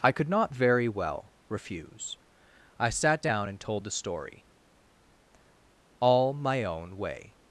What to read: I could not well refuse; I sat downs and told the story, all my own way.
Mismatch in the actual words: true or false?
true